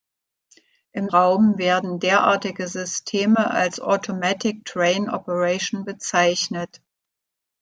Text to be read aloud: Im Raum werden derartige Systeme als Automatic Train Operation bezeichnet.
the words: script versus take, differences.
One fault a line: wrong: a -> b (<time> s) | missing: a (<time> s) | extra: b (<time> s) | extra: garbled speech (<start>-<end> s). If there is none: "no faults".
no faults